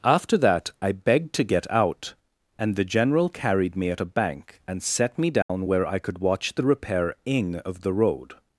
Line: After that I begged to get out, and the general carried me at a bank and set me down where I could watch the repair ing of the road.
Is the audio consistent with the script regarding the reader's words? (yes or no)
yes